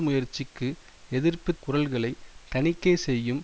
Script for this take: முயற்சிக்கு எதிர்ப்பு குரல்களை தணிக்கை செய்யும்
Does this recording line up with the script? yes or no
yes